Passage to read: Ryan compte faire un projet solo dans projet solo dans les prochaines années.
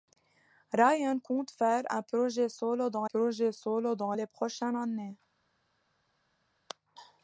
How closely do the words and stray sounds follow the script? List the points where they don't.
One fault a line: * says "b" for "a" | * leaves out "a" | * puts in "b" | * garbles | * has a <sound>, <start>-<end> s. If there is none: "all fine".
all fine